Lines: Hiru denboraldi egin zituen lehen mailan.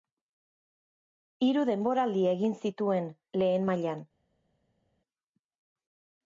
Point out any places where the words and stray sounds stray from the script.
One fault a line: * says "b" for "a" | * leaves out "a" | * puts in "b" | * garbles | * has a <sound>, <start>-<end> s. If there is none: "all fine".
all fine